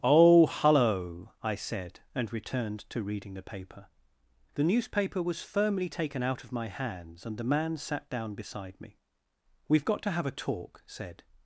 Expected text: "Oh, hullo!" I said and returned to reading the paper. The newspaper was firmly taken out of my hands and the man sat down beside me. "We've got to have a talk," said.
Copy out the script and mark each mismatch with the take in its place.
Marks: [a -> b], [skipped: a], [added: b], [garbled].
"Oh, hullo!" I said and returned to reading the paper. The newspaper was firmly taken out of my hands and the man sat down beside me. "We've got to have a talk," said.